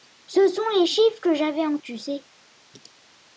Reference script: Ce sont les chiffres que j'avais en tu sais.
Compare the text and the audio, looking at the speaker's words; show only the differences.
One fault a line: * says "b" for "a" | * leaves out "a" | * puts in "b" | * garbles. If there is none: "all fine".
all fine